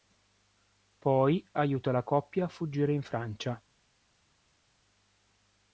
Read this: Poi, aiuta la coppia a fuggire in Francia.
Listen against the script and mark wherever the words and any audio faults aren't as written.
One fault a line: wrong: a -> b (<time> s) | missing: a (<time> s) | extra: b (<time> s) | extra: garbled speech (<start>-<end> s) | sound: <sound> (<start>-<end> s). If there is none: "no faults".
no faults